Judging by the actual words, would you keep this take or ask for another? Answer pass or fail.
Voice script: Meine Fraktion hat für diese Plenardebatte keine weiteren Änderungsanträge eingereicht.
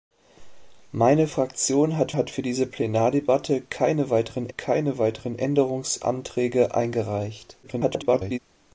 fail